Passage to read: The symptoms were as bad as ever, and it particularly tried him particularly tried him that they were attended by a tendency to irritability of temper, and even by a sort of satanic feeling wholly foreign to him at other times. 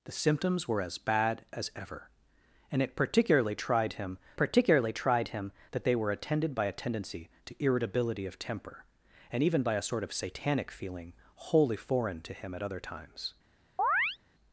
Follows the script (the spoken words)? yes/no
yes